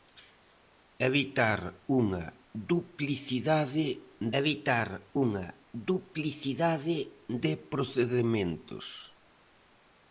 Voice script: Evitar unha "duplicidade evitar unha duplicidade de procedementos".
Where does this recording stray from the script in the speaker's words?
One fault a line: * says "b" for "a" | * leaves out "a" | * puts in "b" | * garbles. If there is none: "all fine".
all fine